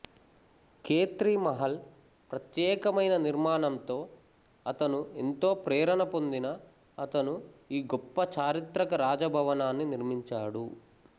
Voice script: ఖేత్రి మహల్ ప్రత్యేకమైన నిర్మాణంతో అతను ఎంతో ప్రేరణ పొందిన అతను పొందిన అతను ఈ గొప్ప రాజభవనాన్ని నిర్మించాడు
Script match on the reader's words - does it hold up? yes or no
no